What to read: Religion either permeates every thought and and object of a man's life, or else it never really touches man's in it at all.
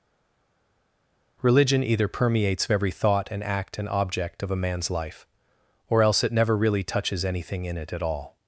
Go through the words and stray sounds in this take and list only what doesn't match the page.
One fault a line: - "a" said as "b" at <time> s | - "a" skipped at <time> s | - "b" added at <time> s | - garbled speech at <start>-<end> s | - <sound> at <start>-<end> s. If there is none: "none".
- "act" added at 3.4 s
- "man's" said as "anything" at 7.2 s